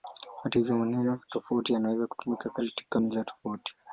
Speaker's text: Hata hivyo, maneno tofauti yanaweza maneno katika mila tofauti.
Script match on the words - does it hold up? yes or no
no